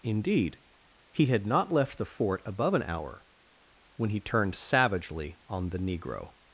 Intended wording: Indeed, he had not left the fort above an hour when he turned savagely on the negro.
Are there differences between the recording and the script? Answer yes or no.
no